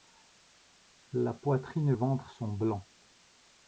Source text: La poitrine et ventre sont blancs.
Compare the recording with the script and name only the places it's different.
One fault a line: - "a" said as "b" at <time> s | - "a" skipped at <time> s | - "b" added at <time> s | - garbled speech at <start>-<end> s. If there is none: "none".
none